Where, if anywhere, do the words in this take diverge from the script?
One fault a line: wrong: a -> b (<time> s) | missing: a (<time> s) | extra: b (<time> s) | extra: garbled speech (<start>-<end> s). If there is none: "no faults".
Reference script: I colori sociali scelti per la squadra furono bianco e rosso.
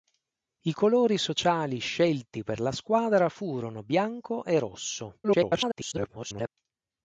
extra: garbled speech (5.2-6.5 s)